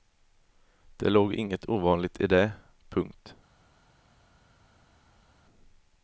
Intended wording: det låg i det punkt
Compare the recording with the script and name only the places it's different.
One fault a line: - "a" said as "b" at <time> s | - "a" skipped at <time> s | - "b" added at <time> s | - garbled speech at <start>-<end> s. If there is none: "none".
- "inget ovanligt" added at 1.3 s